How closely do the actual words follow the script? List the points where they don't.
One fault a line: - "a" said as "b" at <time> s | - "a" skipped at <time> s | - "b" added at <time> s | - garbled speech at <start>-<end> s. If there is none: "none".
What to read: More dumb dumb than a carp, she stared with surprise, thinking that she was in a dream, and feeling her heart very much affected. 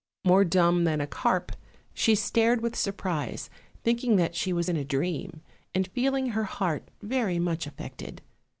- "dumb" skipped at 0.8 s